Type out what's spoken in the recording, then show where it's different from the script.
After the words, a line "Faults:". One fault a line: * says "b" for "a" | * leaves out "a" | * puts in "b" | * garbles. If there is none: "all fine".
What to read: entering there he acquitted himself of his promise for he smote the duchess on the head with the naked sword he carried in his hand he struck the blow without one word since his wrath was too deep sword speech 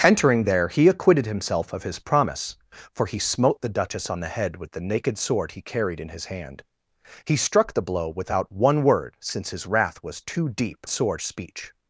entering there he acquitted himself of his promise for he smote the duchess on the head with the naked sword he carried in his hand he struck the blow without one word since his wrath was too deep sword speech
Faults:
all fine